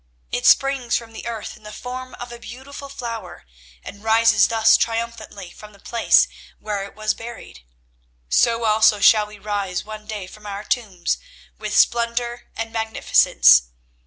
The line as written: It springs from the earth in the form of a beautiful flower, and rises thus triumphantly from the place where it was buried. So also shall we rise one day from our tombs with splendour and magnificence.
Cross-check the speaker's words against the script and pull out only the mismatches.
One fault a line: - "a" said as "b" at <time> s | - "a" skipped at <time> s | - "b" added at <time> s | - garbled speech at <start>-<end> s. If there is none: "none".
none